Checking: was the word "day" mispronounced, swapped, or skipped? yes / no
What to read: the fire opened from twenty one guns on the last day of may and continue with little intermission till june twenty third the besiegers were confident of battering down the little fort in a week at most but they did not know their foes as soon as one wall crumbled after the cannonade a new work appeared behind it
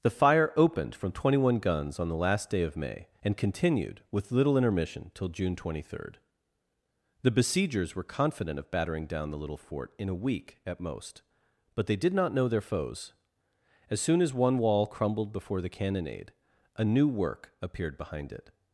no